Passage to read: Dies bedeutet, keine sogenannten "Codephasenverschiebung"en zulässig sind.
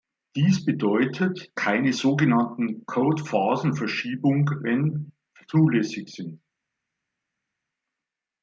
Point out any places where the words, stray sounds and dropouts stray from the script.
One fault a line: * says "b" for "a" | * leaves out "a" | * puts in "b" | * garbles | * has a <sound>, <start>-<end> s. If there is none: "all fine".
all fine